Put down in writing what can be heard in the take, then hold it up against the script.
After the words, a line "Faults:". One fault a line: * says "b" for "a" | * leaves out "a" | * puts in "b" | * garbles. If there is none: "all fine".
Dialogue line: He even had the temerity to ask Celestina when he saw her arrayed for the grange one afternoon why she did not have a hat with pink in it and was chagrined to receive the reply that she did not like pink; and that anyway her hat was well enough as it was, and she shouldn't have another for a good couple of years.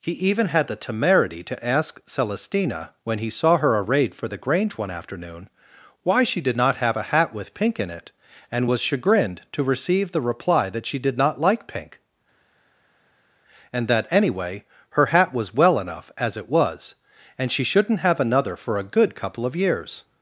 He even had the temerity to ask Celestina when he saw her arrayed for the grange one afternoon why she did not have a hat with pink in it and was chagrined to receive the reply that she did not like pink; and that anyway her hat was well enough as it was, and she shouldn't have another for a good couple of years.
Faults:
all fine